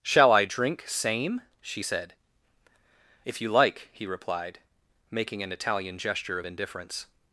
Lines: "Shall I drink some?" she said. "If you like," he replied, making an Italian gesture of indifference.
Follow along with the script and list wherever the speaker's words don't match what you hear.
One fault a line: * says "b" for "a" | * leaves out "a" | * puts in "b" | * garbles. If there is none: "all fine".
* says "same" for "some"